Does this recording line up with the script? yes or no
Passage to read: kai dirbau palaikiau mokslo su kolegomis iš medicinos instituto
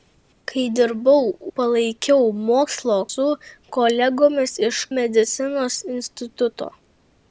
yes